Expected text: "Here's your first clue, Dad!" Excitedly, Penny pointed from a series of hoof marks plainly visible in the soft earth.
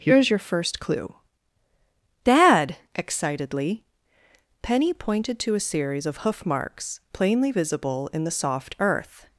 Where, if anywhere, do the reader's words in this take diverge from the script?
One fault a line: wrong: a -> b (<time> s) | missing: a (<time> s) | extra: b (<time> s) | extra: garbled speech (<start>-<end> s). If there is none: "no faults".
wrong: from -> to (5.4 s)